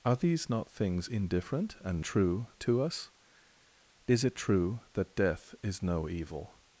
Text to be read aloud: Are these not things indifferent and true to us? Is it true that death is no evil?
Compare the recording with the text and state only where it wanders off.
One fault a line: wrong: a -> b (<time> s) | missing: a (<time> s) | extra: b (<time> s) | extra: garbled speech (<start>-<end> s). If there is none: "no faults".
no faults